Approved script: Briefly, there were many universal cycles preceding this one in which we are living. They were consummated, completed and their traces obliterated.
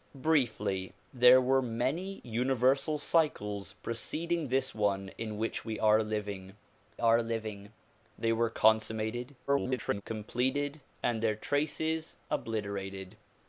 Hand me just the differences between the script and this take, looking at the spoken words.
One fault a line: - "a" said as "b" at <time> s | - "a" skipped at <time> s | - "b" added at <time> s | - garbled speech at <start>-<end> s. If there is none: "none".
- "are living" added at 7.0 s
- garbled speech at 9.5-10.0 s